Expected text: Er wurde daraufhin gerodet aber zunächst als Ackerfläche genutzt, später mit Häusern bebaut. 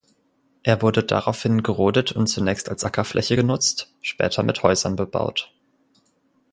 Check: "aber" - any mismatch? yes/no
yes